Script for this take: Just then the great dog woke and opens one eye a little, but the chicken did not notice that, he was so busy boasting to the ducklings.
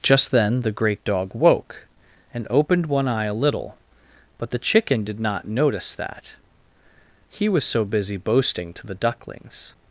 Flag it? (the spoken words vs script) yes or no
yes